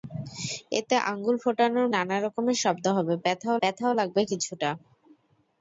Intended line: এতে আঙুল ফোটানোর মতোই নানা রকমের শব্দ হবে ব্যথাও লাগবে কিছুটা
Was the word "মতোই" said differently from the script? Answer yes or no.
yes